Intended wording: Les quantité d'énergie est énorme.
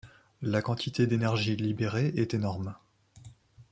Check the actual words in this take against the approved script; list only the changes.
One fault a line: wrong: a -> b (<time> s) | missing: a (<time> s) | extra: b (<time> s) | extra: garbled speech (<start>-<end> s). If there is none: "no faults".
wrong: Les -> La (0.4 s)
extra: libérée (1.6 s)